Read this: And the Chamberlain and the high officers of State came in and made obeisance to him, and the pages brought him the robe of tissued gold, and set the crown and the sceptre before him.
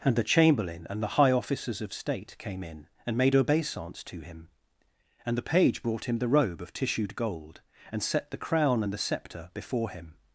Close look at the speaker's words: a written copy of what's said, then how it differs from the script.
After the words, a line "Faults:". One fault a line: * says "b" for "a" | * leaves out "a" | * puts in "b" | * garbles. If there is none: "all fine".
And the Chamberlain and the high officers of State came in and made obeisance to him, and the page brought him the robe of tissued gold, and set the crown and the sceptre before him.
Faults:
* says "page" for "pages"